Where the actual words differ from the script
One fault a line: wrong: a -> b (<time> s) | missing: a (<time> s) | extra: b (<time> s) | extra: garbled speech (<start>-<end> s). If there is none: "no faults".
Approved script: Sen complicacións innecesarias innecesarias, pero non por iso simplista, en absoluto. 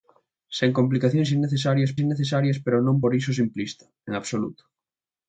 no faults